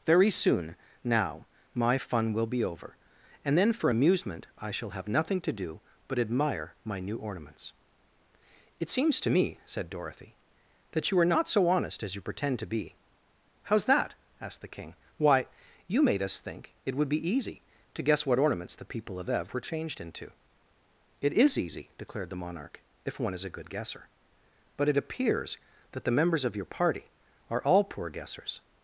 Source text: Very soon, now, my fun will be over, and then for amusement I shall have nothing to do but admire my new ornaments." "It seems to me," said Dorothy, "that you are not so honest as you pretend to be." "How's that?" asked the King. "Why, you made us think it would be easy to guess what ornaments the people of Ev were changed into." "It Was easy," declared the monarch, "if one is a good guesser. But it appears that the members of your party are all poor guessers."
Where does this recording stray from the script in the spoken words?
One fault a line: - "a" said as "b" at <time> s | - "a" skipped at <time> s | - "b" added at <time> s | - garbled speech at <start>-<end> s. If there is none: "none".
- "Was" said as "IS" at 21.3 s